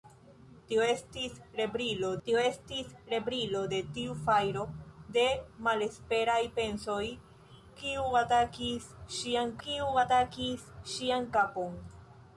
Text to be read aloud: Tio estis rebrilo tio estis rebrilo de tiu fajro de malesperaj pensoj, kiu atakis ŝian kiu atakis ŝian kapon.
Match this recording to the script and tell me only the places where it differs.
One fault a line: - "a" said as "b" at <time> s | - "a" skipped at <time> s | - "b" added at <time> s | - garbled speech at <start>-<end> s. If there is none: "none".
none